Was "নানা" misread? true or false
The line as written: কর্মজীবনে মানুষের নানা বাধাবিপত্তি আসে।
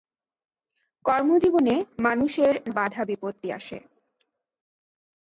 true